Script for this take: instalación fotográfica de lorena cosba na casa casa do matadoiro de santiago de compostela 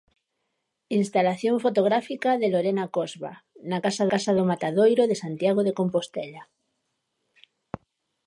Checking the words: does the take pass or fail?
pass